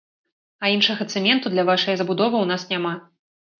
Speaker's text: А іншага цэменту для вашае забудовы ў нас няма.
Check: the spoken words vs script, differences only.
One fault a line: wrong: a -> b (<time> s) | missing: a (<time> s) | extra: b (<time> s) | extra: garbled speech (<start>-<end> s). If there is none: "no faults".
no faults